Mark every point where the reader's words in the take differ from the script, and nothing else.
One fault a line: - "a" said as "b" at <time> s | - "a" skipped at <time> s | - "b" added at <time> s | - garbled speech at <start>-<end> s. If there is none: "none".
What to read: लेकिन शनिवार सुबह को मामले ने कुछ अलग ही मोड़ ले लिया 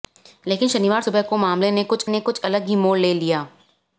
- "ने कुछ" added at 2.1 s